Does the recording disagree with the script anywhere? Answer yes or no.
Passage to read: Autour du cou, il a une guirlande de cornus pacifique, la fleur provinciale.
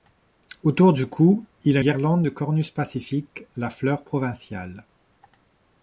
yes